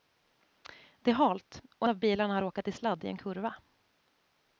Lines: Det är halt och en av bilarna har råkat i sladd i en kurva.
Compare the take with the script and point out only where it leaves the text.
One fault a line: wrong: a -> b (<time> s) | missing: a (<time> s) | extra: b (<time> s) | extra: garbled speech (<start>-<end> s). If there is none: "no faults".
missing: en (1.9 s)